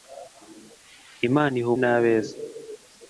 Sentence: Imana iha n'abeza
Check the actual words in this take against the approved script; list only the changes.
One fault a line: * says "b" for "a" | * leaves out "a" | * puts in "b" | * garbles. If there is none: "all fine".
all fine